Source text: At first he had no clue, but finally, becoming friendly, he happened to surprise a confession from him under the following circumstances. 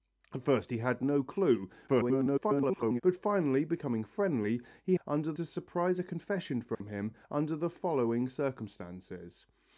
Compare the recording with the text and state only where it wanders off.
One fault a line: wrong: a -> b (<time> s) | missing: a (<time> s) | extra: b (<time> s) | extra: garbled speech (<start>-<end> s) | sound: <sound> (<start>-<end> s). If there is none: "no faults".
extra: garbled speech (1.9-3.0 s)
wrong: happened -> under (5.0 s)
sound: dropout (6.7-6.8 s)